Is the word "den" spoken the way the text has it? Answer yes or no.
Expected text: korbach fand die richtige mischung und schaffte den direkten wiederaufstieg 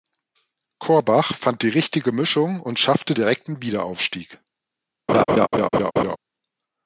no